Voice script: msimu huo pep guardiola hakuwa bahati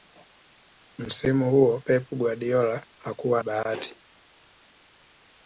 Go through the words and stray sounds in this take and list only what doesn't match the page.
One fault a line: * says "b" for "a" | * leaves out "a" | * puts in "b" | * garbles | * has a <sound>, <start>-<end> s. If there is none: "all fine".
all fine